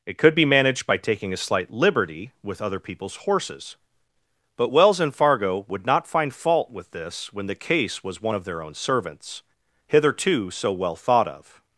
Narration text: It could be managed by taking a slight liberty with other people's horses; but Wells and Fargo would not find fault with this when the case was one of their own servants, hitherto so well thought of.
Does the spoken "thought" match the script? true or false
true